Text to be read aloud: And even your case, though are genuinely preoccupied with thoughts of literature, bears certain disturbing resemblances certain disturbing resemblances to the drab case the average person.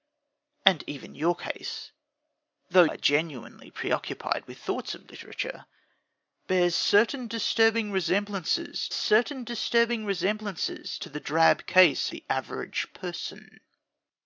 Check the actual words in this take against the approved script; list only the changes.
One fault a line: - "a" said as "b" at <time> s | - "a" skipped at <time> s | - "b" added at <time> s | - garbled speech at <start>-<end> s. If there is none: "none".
none